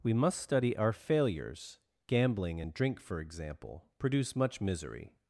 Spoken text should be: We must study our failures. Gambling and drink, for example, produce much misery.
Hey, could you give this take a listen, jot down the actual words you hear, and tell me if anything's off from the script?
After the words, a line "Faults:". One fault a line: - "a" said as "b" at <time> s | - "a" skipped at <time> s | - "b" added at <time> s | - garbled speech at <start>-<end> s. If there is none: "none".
We must study our failures. Gambling and drink, for example, produce much misery.
Faults:
none